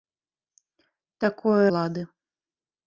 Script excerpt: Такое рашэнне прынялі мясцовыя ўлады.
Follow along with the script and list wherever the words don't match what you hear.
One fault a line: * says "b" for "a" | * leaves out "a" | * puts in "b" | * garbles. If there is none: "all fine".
* leaves out "рашэнне прынялі мясцовыя"